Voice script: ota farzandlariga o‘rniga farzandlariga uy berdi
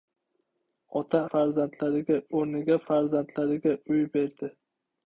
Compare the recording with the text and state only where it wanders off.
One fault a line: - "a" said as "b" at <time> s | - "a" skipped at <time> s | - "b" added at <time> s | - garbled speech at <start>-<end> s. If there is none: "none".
none